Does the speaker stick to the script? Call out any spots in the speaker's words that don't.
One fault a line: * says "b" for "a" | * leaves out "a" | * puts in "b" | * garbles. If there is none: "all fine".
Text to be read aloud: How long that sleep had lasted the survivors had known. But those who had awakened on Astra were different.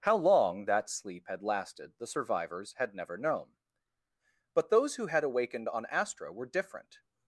* puts in "never"